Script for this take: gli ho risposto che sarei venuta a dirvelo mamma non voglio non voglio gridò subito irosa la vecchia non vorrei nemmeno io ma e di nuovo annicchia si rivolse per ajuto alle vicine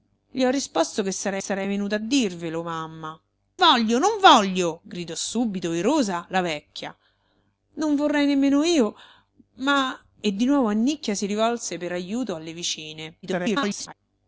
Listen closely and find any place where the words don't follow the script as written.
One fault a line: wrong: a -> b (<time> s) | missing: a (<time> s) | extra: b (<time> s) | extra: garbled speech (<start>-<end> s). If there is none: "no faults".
extra: sarei (1.4 s)
missing: non (3.2 s)
extra: garbled speech (13.2-13.9 s)